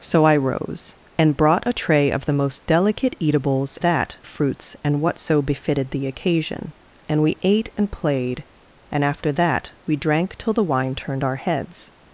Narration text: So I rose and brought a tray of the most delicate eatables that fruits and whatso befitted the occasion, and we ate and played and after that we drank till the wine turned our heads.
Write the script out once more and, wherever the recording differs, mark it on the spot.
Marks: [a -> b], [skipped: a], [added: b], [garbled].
So I rose and brought a tray of the most delicate eatables that fruits and whatso befitted the occasion, and we ate and played and after that we drank till the wine turned our heads.